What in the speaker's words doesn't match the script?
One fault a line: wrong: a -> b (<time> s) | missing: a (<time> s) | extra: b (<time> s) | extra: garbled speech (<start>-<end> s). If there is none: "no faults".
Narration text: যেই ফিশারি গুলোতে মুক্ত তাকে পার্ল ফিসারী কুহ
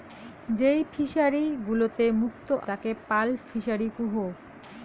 no faults